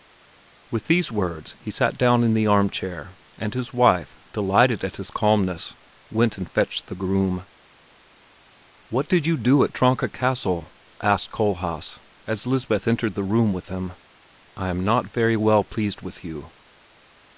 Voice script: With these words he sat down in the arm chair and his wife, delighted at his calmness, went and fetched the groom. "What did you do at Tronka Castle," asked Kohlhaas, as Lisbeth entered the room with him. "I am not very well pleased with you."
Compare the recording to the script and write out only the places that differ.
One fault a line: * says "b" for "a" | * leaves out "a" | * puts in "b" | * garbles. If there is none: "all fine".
all fine